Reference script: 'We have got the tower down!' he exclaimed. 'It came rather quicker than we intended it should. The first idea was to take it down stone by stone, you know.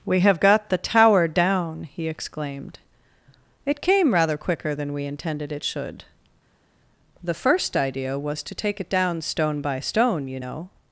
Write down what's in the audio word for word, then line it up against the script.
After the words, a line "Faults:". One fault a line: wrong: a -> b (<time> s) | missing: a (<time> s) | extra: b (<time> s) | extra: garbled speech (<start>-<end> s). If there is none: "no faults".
'We have got the tower down!' he exclaimed. 'It came rather quicker than we intended it should. The first idea was to take it down stone by stone, you know.
Faults:
no faults